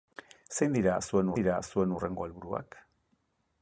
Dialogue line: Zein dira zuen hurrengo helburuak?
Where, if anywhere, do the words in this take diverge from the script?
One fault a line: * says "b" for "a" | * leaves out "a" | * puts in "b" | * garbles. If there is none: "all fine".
* puts in "dira zuen"